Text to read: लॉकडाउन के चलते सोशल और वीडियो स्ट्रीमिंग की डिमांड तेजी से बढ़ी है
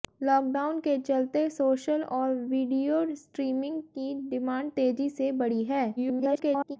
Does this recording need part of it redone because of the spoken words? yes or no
yes